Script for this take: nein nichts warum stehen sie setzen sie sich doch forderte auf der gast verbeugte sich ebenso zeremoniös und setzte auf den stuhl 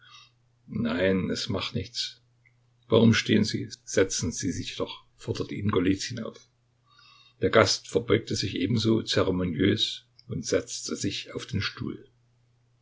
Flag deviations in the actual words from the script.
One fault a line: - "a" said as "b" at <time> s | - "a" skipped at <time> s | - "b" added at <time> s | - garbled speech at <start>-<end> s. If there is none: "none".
- "es macht" added at 1.3 s
- "ihn golizyn" added at 5.5 s
- "sich" added at 11.0 s